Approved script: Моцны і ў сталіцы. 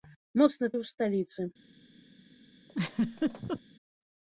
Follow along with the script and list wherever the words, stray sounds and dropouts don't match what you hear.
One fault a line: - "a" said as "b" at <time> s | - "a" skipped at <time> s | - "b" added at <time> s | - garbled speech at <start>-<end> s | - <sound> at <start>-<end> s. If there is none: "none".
- laugh at 2.7-3.6 s